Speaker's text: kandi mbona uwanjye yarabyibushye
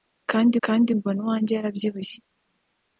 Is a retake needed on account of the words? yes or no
yes